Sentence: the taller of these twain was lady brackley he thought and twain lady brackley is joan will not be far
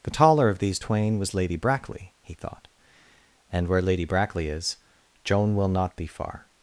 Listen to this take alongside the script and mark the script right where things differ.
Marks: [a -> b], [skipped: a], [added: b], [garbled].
the taller of these twain was lady brackley he thought and [twain -> where] lady brackley is joan will not be far